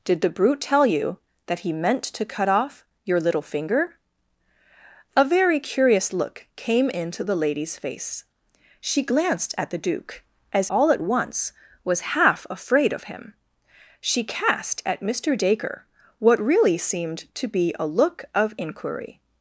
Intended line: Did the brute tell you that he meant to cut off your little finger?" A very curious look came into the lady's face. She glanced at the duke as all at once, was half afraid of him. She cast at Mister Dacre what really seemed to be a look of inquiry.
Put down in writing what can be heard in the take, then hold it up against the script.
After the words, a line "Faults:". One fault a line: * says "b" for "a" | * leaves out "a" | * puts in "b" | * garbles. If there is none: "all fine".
Did the brute tell you that he meant to cut off your little finger?" A very curious look came into the lady's face. She glanced at the duke as all at once, was half afraid of him. She cast at Mister Dacre what really seemed to be a look of inquiry.
Faults:
all fine